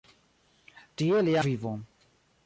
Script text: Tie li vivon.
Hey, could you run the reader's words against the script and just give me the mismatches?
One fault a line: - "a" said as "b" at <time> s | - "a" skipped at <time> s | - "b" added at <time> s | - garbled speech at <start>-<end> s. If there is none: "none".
none